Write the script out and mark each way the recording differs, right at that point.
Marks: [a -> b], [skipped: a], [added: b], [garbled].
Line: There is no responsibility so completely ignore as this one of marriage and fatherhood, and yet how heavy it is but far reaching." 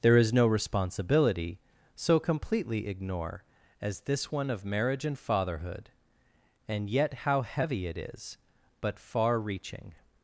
There is no responsibility so completely ignore as this one of marriage and fatherhood, and yet how heavy it is but far reaching."